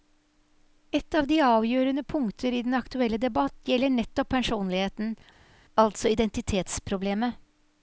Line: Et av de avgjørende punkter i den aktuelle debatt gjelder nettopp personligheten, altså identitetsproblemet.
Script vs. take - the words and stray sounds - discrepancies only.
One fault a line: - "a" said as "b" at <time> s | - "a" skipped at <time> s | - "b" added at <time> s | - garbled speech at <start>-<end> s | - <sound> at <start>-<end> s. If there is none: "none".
none